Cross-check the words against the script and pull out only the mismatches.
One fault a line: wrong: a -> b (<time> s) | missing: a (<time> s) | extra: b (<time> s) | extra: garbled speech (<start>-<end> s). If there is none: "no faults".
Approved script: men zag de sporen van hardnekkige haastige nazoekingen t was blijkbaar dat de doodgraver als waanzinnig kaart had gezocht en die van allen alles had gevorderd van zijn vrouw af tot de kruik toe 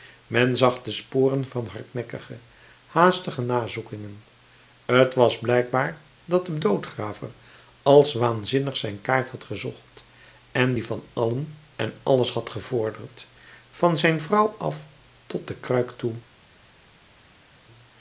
extra: zijn (8.8 s)
extra: en (11.8 s)